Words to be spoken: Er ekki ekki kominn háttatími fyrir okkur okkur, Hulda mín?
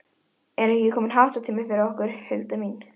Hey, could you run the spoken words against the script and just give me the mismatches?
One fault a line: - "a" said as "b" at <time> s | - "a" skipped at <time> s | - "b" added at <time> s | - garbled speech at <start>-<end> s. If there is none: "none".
- "ekki" skipped at 0.9 s
- "okkur" skipped at 2.2 s